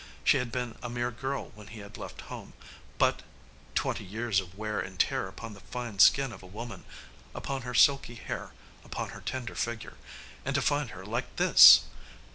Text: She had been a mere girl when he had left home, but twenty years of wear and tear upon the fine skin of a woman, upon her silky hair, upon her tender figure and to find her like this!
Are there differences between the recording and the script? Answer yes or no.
no